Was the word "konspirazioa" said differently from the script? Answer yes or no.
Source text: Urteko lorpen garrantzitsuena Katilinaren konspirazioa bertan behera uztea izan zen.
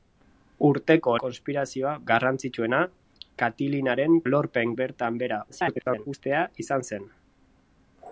yes